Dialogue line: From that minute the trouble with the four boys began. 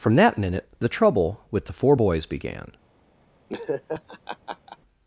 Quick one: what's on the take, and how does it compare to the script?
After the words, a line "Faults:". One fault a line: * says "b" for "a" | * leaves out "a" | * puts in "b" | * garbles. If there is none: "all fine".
From that minute the trouble with the four boys began.
Faults:
all fine